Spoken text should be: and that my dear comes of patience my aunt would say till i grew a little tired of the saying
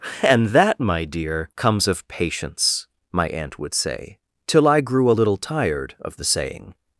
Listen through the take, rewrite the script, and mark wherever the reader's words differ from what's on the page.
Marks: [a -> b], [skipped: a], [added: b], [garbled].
and that my dear comes of patience my aunt would say till i grew a little tired of the saying